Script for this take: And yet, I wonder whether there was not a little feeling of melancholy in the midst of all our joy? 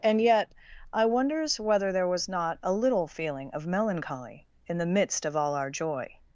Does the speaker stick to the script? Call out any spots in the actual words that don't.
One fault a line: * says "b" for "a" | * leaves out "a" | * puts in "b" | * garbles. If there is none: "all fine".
* says "wonders" for "wonder"